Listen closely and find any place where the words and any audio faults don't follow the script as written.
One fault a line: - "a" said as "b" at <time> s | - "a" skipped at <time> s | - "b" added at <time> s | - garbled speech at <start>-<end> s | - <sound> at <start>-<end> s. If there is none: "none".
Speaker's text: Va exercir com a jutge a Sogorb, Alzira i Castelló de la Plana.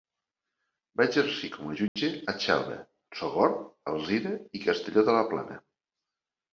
- dropout at 1.9-2.0 s
- "Xelva" added at 2.4 s